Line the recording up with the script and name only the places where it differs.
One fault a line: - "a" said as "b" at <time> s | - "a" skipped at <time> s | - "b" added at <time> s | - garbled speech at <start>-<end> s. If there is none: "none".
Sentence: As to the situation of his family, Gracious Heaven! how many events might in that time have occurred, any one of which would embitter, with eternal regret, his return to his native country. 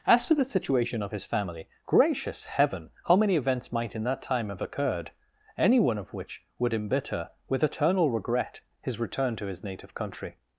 none